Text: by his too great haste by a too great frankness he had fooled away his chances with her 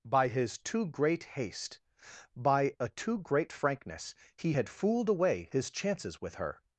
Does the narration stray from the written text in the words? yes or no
no